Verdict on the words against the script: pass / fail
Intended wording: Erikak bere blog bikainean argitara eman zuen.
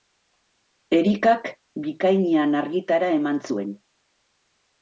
fail